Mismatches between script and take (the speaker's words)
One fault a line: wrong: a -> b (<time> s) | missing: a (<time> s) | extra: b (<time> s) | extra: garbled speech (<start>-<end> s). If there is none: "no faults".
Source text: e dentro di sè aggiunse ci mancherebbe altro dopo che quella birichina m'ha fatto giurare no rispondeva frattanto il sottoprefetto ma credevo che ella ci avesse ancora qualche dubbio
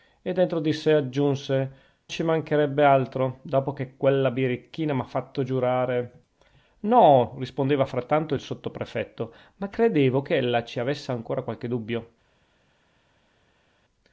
no faults